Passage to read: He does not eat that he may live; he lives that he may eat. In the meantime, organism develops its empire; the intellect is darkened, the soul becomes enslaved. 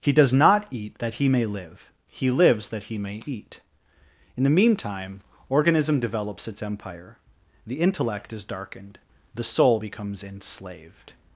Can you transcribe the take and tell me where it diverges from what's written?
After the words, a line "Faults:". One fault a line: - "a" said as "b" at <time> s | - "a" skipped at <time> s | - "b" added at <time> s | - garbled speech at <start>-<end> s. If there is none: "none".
He does not eat that he may live; he lives that he may eat. In the meantime, organism develops its empire; the intellect is darkened, the soul becomes enslaved.
Faults:
none